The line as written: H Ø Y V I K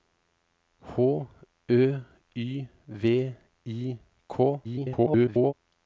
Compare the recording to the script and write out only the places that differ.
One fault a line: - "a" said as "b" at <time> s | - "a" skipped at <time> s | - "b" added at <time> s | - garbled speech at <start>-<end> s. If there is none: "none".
- garbled speech at 4.6-5.5 s